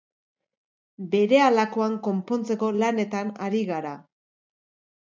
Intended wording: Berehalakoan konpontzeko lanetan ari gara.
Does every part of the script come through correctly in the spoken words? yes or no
yes